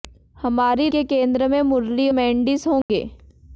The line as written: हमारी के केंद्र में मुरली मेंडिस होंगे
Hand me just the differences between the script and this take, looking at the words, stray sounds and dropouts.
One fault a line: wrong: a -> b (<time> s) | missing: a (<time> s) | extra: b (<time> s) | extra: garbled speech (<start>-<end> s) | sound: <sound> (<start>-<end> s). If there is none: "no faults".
sound: dropout (2.8-2.9 s)